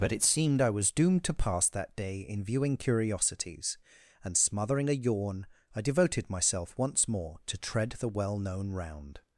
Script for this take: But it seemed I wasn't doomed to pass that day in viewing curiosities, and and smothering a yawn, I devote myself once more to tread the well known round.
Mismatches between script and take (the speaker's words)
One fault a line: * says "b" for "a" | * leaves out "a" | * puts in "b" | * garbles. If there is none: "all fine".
* says "was" for "wasn't"
* leaves out "and"
* says "devoted" for "devote"